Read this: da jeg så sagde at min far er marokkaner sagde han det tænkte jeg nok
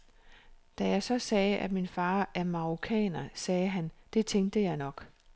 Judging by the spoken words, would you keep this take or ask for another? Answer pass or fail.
pass